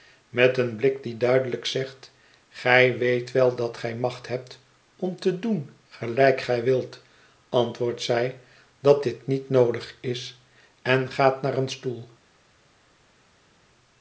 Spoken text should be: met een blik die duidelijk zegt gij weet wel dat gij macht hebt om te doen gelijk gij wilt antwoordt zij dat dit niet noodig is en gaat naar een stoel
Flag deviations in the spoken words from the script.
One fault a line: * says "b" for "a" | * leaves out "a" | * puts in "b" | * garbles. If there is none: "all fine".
all fine